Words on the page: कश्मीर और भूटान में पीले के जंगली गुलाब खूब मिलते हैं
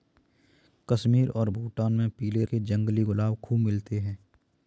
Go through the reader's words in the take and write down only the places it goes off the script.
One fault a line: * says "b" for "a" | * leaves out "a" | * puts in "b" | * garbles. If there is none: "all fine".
all fine